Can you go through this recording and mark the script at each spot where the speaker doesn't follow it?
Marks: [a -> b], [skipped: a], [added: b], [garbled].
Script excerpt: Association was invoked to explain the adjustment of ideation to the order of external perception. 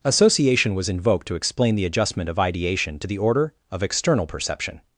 Association was invoked to explain the adjustment of ideation to the order of external perception.